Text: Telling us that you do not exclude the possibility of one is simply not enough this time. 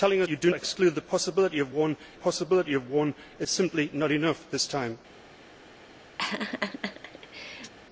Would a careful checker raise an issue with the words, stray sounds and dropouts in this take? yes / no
yes